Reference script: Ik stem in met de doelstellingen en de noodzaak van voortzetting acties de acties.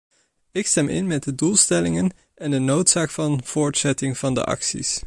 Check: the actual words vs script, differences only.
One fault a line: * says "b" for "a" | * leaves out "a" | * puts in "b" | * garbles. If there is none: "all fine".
* says "van" for "acties"